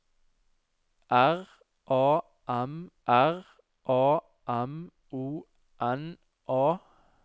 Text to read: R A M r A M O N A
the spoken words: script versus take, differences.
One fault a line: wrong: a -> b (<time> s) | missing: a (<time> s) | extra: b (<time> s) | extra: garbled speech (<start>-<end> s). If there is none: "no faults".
no faults